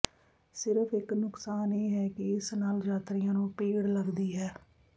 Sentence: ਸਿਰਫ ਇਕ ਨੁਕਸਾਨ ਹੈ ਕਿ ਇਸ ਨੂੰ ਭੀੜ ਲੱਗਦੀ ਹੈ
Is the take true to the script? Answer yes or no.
no